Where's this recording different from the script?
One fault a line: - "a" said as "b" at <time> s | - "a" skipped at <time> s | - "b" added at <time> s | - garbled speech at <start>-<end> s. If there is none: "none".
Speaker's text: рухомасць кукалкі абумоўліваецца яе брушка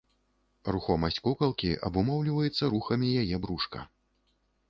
- "рухамі" added at 2.8 s